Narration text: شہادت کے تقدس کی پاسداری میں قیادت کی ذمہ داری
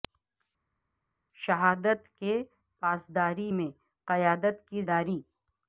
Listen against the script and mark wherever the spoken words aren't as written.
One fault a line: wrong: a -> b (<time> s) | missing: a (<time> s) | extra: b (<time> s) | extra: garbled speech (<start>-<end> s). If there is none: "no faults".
missing: تقدس کی (2.3 s)
missing: ذمہ (4.8 s)